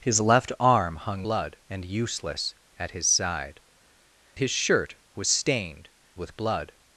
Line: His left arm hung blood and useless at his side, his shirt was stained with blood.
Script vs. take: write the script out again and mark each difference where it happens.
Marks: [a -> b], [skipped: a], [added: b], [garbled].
His left arm hung blood and useless at his side, his shirt was stained with blood.